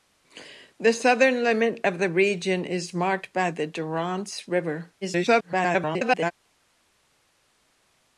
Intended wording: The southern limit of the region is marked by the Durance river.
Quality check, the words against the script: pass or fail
fail